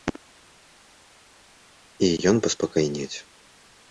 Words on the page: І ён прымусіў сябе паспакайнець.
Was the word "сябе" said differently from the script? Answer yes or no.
yes